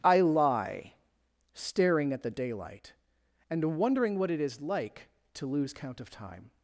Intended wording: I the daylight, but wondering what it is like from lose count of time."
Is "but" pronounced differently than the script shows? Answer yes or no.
yes